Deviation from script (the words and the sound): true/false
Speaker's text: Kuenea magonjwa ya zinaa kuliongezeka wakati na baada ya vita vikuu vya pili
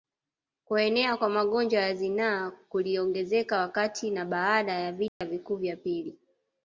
true